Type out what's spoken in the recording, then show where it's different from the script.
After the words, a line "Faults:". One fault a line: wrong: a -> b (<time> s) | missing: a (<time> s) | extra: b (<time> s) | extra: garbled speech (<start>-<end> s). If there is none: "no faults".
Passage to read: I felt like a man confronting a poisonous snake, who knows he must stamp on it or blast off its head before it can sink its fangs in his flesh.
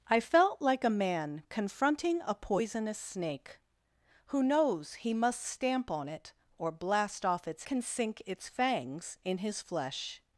I felt like a man confronting a poisonous snake, who knows he must stamp on it or blast off its can sink its fangs in his flesh.
Faults:
missing: head before it (7.7 s)